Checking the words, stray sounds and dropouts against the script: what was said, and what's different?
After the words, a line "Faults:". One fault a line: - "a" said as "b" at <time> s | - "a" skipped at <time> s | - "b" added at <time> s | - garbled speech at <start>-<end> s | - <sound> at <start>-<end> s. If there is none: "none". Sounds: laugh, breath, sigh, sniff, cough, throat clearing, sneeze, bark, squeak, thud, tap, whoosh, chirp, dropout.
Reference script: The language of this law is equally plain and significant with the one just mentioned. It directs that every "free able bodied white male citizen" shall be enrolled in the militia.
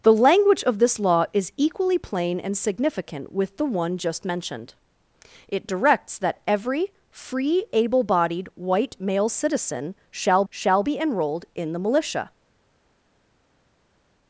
The language of this law is equally plain and significant with the one just mentioned. It directs that every "free able bodied white male citizen" shall shall be enrolled in the militia.
Faults:
- "shall" added at 10.5 s